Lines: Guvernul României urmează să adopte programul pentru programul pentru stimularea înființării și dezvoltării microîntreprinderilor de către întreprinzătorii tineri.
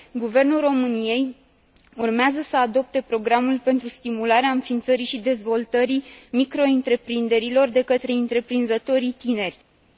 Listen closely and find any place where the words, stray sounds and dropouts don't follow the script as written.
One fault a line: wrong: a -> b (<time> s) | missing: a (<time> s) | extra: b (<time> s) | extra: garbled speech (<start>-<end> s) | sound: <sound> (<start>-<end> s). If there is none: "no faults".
missing: programul pentru (3.9 s)